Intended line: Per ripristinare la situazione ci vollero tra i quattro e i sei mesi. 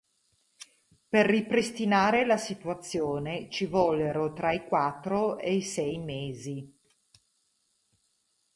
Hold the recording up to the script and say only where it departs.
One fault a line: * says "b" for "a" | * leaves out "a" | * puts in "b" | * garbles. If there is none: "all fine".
all fine